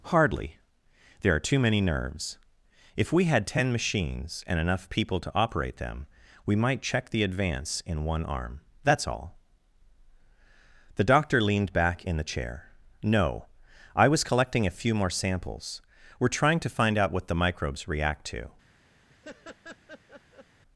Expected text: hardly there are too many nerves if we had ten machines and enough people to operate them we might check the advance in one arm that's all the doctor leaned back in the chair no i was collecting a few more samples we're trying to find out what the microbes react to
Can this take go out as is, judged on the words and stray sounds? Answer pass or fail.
fail